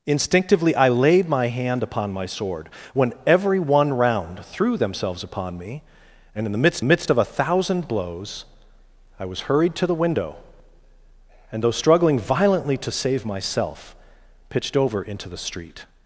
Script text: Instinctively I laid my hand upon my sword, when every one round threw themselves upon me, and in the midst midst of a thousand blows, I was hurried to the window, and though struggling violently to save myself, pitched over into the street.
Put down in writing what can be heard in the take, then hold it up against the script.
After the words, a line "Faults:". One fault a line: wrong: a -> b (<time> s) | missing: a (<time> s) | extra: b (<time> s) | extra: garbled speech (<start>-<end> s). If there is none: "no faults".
Instinctively I laid my hand upon my sword, when every one round threw themselves upon me, and in the midst midst of a thousand blows, I was hurried to the window, and though struggling violently to save myself, pitched over into the street.
Faults:
no faults